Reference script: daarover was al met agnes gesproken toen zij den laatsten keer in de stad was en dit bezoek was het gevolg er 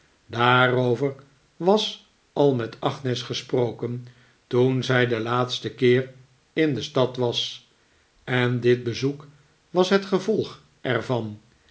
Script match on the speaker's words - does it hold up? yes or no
yes